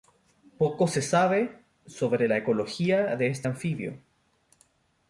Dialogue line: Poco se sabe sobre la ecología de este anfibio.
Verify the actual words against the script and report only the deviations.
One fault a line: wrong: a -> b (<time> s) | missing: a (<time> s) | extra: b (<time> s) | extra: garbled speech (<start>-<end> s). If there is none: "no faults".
no faults